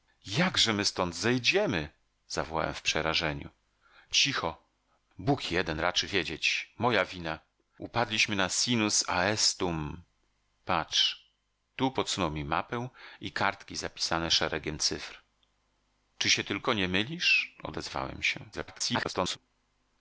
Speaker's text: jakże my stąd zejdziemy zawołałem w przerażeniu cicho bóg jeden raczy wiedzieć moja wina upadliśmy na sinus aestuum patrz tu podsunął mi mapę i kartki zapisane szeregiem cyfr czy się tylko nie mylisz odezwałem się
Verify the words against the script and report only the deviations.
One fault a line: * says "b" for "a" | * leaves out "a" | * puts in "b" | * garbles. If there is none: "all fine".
* garbles